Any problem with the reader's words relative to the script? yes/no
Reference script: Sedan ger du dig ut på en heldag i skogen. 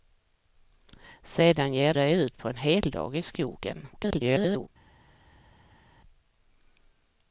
yes